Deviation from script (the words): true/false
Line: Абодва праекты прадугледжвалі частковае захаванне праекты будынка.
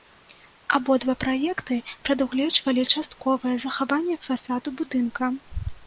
true